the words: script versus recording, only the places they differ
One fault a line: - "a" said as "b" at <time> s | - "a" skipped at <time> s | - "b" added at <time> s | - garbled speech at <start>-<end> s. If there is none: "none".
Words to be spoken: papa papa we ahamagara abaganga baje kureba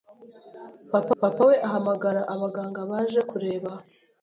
none